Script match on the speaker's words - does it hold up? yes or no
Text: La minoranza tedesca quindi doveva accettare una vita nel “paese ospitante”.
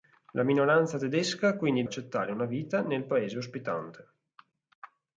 no